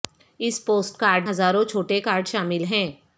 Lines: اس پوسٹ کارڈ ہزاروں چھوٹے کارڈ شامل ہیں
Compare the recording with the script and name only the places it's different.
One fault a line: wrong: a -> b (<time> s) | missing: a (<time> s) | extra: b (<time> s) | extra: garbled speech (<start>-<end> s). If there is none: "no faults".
no faults